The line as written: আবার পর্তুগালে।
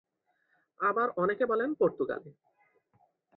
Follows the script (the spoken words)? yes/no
no